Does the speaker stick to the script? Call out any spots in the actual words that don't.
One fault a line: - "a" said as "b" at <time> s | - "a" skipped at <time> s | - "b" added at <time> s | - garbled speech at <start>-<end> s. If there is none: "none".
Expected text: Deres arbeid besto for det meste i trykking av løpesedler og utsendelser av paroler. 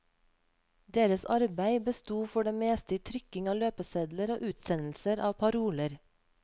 none